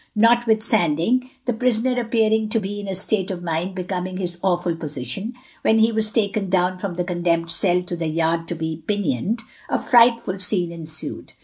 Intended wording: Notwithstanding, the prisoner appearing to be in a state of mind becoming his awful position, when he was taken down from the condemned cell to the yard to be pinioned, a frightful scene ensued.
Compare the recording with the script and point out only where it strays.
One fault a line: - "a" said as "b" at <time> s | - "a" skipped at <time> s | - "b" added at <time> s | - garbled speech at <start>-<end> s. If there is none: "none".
none